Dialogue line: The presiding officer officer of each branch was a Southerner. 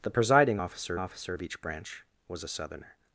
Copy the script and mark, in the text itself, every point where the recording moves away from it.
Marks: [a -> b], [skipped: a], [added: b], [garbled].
The presiding officer officer of each branch was a Southerner.